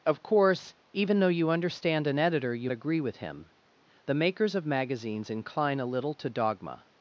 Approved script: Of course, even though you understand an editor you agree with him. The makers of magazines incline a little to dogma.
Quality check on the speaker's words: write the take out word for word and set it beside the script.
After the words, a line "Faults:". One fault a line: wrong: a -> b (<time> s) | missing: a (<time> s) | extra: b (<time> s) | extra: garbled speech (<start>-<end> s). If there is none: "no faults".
Of course, even though you understand an editor you agree with him. The makers of magazines incline a little to dogma.
Faults:
no faults